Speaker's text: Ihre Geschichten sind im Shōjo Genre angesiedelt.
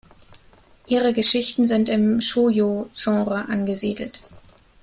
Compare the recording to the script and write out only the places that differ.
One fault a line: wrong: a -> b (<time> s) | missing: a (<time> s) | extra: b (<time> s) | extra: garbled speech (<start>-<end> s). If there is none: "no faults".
no faults